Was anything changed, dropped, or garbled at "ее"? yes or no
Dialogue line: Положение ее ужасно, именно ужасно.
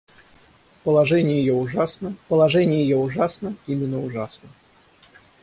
no